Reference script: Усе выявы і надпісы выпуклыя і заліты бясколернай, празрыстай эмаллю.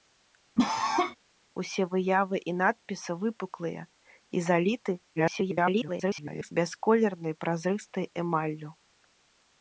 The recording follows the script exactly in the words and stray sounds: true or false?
false